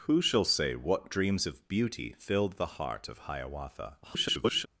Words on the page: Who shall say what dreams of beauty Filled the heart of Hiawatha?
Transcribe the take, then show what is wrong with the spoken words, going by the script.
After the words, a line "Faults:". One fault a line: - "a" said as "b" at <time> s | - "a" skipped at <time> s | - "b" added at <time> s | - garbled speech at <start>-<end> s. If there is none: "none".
Who shall say what dreams of beauty Filled the heart of Hiawatha? [garbled]
Faults:
- garbled speech at 4.0-4.7 s